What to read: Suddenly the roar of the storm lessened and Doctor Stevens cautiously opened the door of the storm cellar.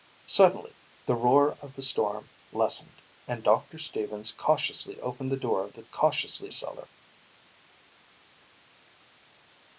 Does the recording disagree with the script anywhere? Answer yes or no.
yes